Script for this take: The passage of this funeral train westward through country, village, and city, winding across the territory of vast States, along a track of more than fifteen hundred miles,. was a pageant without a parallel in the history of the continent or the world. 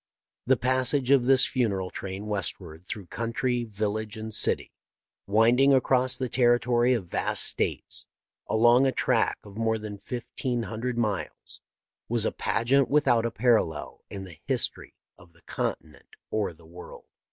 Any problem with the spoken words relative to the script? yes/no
no